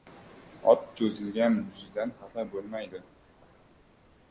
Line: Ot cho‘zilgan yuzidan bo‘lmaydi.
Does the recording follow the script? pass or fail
fail